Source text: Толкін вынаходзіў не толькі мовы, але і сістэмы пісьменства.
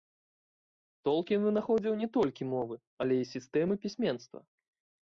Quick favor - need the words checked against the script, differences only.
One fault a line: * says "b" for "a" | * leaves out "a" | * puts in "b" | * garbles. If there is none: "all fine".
all fine